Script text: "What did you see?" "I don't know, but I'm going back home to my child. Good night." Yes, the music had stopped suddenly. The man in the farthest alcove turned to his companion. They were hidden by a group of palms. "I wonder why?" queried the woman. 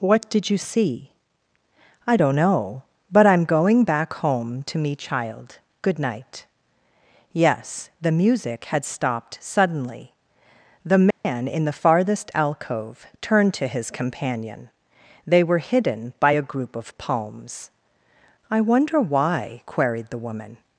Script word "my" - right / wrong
wrong